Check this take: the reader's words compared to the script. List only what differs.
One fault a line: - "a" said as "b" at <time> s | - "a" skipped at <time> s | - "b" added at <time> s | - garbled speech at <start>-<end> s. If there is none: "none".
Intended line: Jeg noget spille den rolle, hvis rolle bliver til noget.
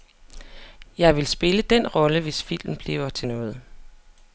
- "noget" said as "vil" at 1.1 s
- "rolle" said as "filmen" at 2.4 s